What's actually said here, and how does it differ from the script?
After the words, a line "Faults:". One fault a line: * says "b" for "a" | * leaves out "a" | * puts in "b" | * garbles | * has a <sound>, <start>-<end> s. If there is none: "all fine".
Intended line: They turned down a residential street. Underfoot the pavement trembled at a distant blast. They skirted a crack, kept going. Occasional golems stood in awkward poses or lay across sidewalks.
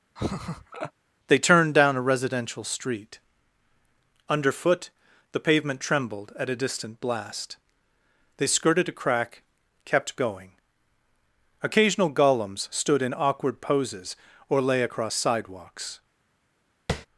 They turned down a residential street. Underfoot the pavement trembled at a distant blast. They skirted a crack, kept going. Occasional golems stood in awkward poses or lay across sidewalks.
Faults:
* has a laugh, 0.2-0.9 s
* has a tap, 16.9-17.1 s